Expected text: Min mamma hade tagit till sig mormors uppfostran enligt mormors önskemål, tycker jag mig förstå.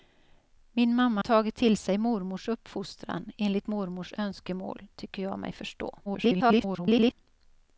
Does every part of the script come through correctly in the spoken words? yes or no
no